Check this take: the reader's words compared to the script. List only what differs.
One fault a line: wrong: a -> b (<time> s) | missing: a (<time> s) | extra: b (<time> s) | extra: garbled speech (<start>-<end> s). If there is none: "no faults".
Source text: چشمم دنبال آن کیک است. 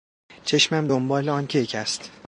no faults